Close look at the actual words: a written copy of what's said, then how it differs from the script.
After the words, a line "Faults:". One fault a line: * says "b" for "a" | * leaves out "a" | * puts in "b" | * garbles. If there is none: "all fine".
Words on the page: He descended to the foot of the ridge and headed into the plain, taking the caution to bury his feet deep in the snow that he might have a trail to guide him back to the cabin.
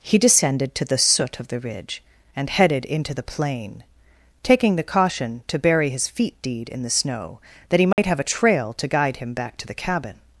He descended to the soot of the ridge and headed into the plain, taking the caution to bury his feet deed in the snow that he might have a trail to guide him back to the cabin.
Faults:
* says "soot" for "foot"
* says "deed" for "deep"